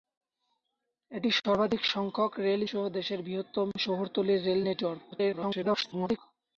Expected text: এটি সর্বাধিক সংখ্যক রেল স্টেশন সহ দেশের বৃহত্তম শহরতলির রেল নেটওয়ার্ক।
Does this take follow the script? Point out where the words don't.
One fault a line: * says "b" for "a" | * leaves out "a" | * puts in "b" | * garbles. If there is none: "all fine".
* leaves out "স্টেশন"
* garbles